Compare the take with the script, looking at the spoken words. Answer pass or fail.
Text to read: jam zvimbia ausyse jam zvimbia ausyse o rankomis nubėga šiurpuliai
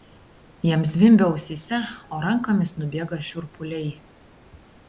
fail